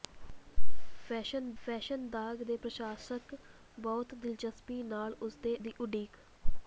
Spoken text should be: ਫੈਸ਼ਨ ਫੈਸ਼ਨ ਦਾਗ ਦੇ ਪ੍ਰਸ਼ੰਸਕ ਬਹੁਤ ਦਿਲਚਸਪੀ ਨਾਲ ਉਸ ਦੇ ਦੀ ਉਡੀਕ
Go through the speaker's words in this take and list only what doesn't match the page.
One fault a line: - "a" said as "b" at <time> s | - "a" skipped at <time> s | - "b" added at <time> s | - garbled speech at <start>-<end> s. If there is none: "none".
none